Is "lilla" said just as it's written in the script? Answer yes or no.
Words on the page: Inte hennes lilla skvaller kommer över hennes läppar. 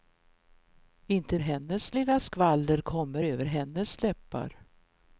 yes